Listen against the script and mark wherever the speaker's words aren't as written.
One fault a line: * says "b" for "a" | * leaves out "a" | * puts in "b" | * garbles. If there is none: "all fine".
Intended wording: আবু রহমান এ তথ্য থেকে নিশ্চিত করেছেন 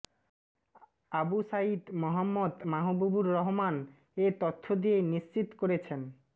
* puts in "সাঈদ মোহাম্মদ মাহবুবুর"
* says "দিয়ে" for "থেকে"